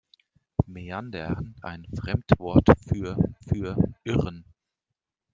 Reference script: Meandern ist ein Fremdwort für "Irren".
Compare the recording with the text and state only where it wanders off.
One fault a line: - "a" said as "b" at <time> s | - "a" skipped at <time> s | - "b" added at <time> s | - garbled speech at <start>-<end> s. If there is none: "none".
- "ist" skipped at 1.5 s
- "für" added at 3.5 s